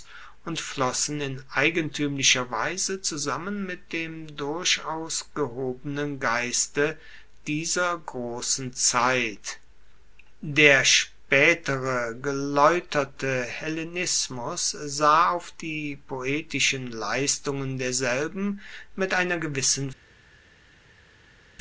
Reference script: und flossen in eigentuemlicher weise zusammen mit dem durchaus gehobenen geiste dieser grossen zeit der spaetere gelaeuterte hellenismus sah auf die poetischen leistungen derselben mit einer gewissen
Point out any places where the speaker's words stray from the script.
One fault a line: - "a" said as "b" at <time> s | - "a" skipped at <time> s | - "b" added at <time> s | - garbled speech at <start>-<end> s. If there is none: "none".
none